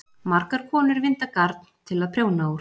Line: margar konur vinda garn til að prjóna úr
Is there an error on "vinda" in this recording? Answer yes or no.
no